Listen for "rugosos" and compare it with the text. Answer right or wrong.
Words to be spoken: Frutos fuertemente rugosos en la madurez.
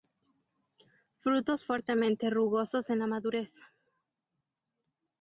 right